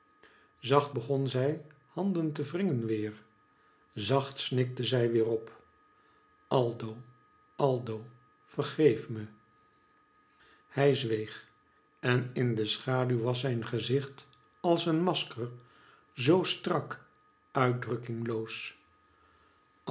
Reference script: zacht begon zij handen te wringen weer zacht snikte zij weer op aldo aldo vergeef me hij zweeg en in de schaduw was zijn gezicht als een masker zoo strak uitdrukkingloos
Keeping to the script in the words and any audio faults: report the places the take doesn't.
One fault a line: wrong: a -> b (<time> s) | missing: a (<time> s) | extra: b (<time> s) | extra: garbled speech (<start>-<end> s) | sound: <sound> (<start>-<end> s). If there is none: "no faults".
no faults